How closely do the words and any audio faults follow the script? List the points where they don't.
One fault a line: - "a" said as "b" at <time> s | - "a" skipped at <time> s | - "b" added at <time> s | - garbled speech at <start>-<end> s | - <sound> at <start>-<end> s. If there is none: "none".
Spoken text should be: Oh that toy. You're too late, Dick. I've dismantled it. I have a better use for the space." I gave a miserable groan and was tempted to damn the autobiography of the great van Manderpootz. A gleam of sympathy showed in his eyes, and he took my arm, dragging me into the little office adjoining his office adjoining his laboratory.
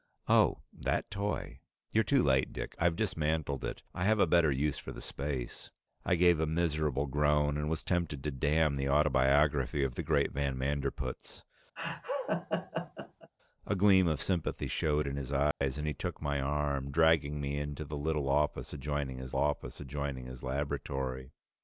- laugh at 11.8-13.3 s
- dropout at 15.5-15.6 s